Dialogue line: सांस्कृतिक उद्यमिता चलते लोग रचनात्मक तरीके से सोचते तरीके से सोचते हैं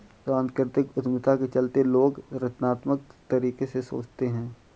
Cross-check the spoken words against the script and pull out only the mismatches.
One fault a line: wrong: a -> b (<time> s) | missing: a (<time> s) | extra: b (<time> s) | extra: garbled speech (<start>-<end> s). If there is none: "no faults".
extra: के (1.4 s)
missing: तरीके से सोचते (4.3 s)